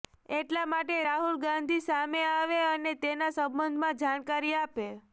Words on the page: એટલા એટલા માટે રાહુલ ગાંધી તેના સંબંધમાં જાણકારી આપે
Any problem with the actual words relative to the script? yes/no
yes